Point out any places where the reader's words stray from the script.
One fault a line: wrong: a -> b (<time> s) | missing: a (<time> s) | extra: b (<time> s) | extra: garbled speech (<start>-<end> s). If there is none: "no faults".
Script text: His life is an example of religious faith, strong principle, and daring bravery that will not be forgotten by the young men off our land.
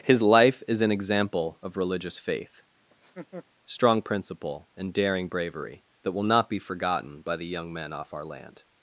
no faults